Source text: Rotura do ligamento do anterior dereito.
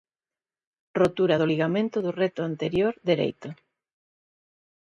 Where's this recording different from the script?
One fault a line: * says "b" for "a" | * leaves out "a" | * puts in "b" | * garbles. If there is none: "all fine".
* puts in "recto"